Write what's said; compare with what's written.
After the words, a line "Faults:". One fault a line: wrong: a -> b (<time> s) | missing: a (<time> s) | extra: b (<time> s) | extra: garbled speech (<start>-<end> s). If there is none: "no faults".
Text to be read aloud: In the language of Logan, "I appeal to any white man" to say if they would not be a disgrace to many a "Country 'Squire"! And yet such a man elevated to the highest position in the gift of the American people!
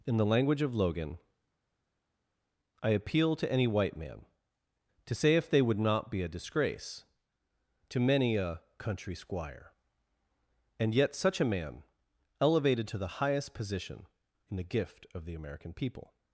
In the language of Logan, "I appeal to any white man" to say if they would not be a disgrace to many a "Country 'Squire"! And yet such a man elevated to the highest position in the gift of the American people!
Faults:
no faults